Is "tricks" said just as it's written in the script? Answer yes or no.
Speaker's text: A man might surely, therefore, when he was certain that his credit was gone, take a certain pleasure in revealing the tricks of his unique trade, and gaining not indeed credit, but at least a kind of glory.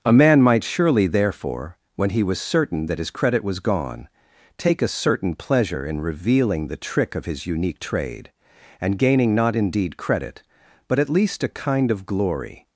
no